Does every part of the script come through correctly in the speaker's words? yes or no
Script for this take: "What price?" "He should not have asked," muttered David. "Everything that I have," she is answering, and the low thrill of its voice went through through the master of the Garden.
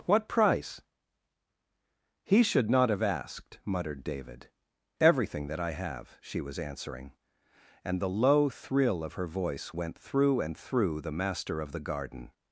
no